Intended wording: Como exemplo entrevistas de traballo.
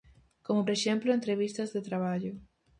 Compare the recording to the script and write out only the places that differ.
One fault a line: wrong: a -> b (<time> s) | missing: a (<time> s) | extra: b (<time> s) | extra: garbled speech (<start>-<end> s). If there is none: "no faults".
no faults